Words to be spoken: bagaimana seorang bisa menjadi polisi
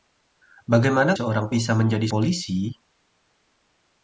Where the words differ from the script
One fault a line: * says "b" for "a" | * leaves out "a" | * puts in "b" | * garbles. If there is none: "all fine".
all fine